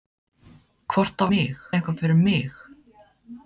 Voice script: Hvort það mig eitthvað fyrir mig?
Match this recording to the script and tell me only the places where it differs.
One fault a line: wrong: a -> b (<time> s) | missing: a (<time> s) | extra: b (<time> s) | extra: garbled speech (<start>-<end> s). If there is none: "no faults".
no faults